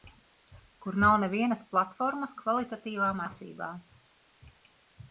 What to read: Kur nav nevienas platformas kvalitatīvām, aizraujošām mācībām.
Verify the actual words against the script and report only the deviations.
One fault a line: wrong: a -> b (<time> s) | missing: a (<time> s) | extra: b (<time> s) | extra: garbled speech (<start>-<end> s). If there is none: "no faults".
missing: aizraujošām (3.2 s)